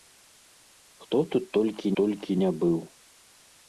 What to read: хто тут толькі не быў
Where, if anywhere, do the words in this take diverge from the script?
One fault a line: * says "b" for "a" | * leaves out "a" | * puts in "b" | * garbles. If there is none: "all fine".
* puts in "толькі"